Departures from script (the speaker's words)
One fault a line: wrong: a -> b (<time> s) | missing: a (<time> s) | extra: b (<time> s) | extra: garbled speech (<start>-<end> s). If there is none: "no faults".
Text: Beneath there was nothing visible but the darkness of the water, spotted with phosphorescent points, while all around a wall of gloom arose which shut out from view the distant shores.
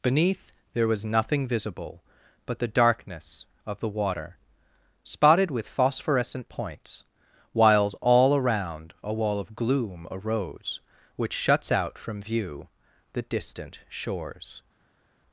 wrong: while -> whiles (7.5 s)
wrong: shut -> shuts (11.3 s)